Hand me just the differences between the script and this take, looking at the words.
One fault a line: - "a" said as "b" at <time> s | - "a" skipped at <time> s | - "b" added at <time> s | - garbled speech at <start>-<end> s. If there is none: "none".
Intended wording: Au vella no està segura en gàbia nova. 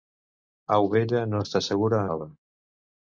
- "en gàbia" skipped at 2.0 s